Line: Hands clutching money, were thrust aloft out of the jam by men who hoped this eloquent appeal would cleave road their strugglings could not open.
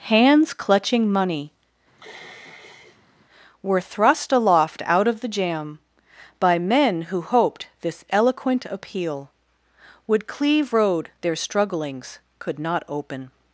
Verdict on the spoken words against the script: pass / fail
pass